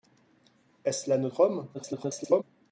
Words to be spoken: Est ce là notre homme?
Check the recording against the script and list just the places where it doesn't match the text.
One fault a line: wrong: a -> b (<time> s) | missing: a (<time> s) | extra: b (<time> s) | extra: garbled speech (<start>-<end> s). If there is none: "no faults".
extra: garbled speech (1.7-2.4 s)